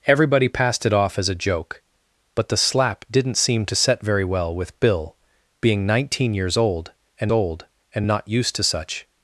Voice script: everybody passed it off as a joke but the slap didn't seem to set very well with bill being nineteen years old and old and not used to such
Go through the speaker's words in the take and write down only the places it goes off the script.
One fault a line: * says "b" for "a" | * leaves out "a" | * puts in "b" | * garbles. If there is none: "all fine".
all fine